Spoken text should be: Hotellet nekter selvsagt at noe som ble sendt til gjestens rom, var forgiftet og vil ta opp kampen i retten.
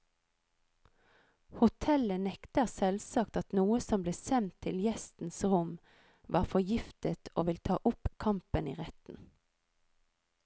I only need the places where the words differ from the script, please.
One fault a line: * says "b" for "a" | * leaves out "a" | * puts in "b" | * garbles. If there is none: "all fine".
all fine